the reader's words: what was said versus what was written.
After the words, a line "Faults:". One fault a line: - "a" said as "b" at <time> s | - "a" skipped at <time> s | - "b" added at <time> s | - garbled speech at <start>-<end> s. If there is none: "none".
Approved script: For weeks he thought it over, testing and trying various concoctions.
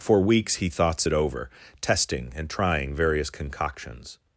For weeks he thoughts it over, testing and trying various concoctions.
Faults:
- "thought" said as "thoughts" at 0.7 s